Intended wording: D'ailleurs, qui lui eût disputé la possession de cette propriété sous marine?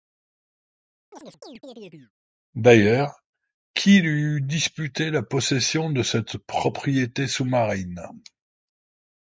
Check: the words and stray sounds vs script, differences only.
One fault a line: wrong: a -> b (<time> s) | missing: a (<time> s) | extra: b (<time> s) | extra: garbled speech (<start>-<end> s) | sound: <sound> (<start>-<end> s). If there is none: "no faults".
sound: chirp (1.1-2.1 s)